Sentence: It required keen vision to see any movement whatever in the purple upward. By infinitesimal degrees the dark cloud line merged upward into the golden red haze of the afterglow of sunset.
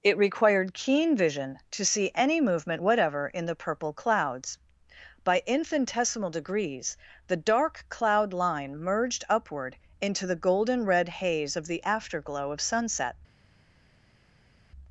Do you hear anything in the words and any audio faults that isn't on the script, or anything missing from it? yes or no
yes